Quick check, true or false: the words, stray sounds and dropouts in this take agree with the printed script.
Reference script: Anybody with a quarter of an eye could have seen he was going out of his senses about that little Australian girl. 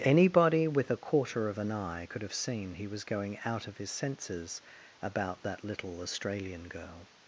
true